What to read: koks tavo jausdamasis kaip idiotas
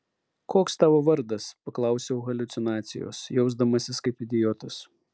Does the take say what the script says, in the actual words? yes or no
no